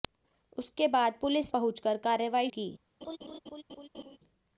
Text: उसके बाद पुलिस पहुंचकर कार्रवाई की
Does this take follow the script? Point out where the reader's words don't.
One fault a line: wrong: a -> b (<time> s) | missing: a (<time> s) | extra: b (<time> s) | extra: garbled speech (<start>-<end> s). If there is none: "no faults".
no faults